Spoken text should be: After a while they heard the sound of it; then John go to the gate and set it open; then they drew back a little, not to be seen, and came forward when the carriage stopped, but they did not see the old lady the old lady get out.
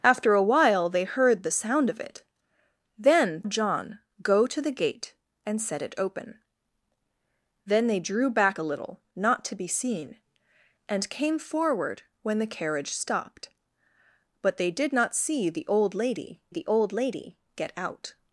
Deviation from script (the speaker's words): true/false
false